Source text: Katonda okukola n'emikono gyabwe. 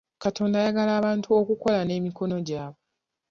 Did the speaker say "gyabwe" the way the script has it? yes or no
yes